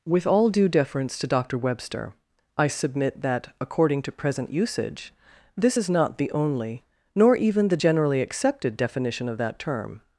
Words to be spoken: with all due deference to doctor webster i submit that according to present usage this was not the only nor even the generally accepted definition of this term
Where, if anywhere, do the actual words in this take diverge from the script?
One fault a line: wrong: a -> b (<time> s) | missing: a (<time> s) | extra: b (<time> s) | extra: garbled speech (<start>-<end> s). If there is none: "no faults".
wrong: was -> is (5.7 s)
wrong: this -> that (9.4 s)